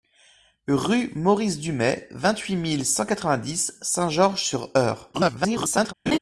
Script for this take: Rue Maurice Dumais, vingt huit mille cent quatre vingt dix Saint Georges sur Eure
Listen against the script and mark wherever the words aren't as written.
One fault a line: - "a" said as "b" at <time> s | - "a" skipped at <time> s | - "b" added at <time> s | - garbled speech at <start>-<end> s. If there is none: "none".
- garbled speech at 5.1-5.9 s